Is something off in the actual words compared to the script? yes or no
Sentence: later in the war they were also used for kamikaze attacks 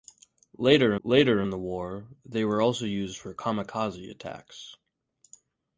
yes